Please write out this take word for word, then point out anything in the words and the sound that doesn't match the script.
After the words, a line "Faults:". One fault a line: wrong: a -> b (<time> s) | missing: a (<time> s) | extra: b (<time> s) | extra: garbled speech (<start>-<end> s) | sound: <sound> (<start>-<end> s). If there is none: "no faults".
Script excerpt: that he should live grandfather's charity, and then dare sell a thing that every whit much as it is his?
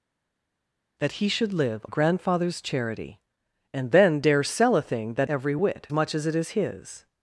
that he should live grandfather's charity, and then dare sell a thing that every whit much as it is his?
Faults:
no faults